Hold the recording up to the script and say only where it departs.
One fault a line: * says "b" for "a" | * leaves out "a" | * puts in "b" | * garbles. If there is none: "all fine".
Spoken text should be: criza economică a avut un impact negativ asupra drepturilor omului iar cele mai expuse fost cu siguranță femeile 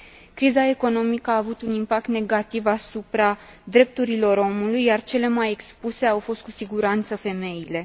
* puts in "au"